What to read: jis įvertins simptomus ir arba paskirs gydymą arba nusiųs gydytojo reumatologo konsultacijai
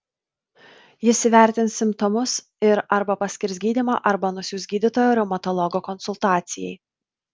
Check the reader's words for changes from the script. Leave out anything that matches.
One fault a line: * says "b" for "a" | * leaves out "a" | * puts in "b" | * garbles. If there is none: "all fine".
all fine